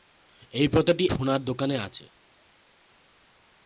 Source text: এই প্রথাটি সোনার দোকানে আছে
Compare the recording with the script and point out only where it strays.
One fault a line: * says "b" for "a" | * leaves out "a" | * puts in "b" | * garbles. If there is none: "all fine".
all fine